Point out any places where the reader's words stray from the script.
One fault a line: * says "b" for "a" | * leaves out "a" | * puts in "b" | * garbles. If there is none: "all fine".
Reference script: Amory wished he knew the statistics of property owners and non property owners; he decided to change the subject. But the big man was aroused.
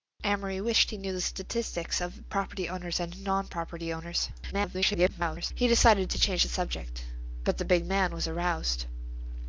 * garbles